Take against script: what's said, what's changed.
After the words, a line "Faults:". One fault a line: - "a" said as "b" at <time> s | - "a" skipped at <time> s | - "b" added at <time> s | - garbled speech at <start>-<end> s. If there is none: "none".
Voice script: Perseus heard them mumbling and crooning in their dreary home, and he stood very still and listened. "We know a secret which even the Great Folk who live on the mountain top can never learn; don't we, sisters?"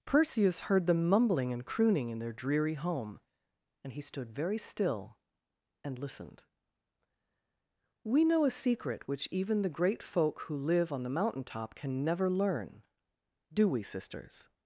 Perseus heard them mumbling and crooning in their dreary home, and he stood very still and listened. "We know a secret which even the Great Folk who live on the mountain top can never learn; do we, sisters?"
Faults:
- "don't" said as "do" at 13.5 s